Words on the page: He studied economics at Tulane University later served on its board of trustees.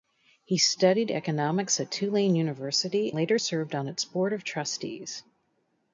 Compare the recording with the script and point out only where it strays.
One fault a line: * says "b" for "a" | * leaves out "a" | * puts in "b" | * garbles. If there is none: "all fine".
all fine